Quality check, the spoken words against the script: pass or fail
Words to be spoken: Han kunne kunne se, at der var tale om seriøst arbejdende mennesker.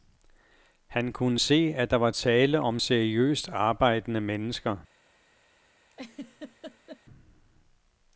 fail